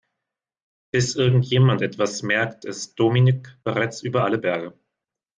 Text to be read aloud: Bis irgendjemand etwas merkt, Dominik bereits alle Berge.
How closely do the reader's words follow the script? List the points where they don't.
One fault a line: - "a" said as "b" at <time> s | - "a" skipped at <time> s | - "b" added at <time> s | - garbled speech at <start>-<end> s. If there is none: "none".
- "ist" added at 2.6 s
- "über" added at 4.0 s